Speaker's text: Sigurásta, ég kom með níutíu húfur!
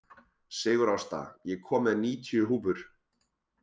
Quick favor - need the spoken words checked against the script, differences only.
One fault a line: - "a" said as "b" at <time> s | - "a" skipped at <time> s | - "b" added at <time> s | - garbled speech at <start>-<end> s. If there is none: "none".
none